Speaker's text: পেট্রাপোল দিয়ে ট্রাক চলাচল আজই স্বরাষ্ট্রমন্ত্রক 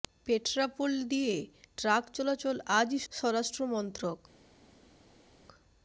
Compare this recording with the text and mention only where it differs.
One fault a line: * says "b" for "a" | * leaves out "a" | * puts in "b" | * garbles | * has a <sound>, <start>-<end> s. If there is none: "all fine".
all fine